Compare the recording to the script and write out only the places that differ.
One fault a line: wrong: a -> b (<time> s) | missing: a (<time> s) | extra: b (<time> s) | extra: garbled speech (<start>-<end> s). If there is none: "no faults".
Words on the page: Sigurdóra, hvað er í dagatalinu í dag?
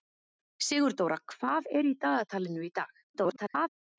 extra: garbled speech (3.1-3.7 s)